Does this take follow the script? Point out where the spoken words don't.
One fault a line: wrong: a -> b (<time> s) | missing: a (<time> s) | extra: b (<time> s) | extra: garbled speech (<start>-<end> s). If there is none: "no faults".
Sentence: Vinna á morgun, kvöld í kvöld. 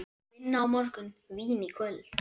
wrong: kvöld -> vín (1.4 s)